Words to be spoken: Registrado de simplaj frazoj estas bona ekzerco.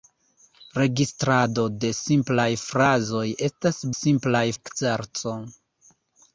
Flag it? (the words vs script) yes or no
yes